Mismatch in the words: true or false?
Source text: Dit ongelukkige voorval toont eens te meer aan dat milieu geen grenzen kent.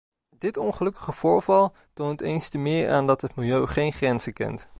true